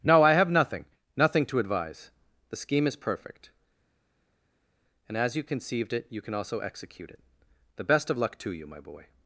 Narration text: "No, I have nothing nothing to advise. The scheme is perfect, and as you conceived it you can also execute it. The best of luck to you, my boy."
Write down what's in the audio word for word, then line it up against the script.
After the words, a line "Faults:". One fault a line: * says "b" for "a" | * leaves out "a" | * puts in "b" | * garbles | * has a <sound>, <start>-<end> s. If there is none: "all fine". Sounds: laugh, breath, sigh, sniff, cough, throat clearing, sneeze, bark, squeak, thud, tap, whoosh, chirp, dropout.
"No, I have nothing nothing to advise. The scheme is perfect, and as you conceived it you can also execute it. The best of luck to you, my boy."
Faults:
all fine